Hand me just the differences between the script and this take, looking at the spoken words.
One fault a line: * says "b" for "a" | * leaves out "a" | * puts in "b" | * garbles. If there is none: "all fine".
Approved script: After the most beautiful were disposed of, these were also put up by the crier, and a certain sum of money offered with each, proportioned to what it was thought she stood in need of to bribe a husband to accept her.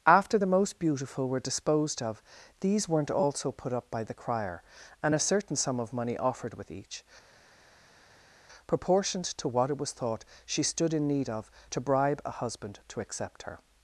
* says "weren't" for "were"